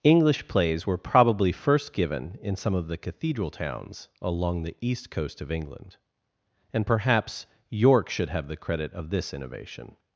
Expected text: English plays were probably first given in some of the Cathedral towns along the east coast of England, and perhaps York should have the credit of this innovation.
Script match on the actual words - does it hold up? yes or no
yes